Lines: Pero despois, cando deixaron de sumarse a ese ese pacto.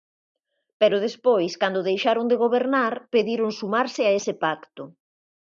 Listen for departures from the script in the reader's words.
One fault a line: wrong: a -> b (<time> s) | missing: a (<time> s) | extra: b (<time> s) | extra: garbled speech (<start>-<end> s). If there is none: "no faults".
extra: gobernar pediron (2.4 s)
missing: ese (4.3 s)